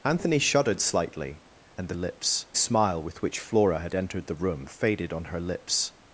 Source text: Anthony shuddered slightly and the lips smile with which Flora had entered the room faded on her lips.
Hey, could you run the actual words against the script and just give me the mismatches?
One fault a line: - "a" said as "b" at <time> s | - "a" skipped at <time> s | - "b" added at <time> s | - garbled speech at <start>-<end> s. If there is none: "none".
none